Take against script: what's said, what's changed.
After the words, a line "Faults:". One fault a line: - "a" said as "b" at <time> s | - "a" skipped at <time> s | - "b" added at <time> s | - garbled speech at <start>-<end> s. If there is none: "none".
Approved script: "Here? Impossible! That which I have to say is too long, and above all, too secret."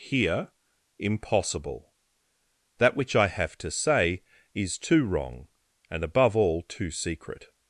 "Here? Impossible! That which I have to say is too wrong, and above all, too secret."
Faults:
- "long" said as "wrong" at 5.0 s